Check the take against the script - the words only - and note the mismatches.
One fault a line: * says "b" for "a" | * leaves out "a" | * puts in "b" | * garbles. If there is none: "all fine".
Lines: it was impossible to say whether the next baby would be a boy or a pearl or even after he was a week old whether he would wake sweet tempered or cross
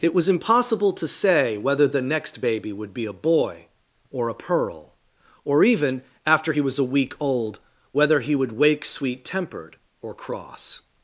all fine